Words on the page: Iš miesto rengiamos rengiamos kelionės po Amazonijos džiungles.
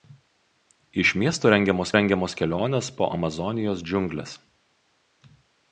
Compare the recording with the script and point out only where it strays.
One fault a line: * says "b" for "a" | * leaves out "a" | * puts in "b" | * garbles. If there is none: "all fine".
all fine